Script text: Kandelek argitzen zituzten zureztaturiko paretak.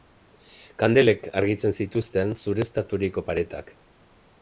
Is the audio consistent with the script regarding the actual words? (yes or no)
yes